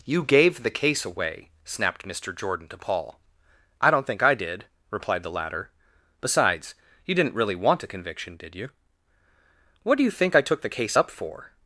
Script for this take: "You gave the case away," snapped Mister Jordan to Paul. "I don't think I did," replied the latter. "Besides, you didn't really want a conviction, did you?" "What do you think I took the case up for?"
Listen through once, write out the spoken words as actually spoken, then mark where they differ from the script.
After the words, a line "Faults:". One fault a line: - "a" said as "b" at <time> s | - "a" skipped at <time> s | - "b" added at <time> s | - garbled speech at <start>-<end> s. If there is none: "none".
"You gave the case away," snapped Mister Jordan to Paul. "I don't think I did," replied the latter. "Besides, you didn't really want a conviction, did you?" "What do you think I took the case up for?"
Faults:
none